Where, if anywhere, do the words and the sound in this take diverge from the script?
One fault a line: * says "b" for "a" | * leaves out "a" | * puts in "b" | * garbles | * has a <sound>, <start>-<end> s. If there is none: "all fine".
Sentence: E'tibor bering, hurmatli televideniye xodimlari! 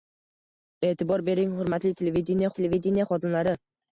* puts in "televideniye"